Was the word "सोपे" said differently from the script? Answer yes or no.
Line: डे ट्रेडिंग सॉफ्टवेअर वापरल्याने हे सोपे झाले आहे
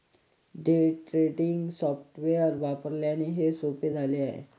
no